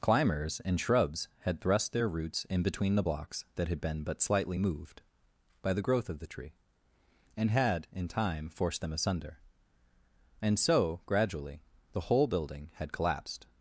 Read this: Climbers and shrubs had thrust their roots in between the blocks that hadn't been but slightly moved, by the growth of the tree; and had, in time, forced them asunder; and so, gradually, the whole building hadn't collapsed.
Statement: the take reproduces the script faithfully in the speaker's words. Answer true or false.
false